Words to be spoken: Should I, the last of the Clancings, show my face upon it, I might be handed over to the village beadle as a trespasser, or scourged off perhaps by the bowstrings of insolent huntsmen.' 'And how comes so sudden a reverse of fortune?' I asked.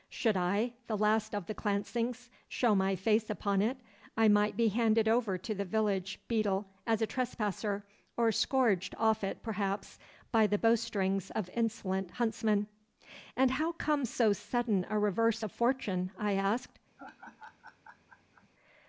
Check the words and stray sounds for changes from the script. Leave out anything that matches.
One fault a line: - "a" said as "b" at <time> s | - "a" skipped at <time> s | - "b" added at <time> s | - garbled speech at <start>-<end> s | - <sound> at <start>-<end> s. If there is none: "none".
- "it" added at 9.2 s
- laugh at 17.0-18.5 s